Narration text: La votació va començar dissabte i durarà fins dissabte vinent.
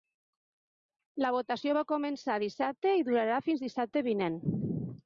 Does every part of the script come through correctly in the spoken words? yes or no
yes